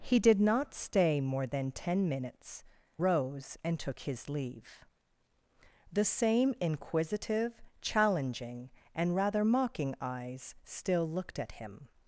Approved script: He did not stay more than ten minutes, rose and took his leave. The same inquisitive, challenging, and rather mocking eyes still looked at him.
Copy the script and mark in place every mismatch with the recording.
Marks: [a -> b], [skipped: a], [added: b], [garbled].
He did not stay more than ten minutes, rose and took his leave. The same inquisitive, challenging, and rather mocking eyes still looked at him.